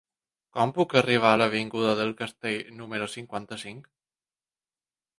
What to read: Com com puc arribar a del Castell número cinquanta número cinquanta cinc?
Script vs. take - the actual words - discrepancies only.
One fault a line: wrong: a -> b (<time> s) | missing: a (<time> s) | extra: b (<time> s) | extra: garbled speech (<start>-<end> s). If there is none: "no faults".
missing: com (0.7 s)
extra: l'avinguda (1.4 s)
missing: número cinquanta (3.6 s)